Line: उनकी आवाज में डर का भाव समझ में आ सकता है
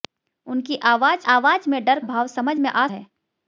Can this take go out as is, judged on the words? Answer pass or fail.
fail